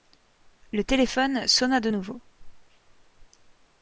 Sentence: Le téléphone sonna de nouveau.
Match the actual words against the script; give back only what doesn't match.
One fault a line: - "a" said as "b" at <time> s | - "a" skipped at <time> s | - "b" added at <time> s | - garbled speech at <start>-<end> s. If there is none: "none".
none